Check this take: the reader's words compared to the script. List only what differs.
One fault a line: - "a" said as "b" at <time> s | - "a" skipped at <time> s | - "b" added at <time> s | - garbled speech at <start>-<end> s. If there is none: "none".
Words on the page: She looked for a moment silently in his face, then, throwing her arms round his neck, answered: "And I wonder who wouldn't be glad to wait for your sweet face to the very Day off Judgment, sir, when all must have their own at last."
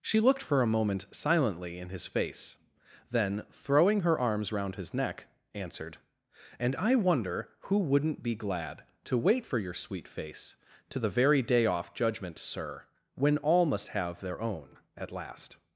none